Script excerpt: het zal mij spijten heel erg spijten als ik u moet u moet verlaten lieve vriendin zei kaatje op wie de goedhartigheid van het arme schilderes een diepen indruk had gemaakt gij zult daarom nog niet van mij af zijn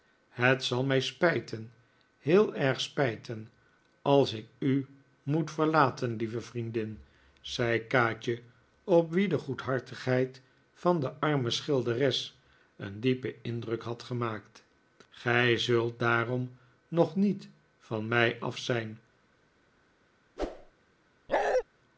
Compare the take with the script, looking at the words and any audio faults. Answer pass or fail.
fail